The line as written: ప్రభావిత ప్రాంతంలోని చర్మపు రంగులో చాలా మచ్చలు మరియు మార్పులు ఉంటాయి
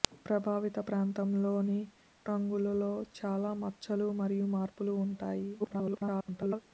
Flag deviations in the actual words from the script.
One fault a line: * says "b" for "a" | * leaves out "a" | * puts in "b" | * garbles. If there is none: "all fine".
* leaves out "చర్మపు"
* garbles